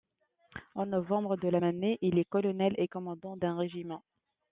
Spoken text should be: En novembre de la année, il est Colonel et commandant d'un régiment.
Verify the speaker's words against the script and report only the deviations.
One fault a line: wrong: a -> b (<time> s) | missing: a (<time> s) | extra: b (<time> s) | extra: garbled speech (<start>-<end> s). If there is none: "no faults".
no faults